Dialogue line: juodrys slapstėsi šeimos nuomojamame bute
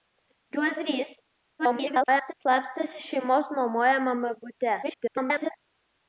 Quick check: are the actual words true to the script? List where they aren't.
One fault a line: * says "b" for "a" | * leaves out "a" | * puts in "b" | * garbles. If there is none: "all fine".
* garbles
* garbles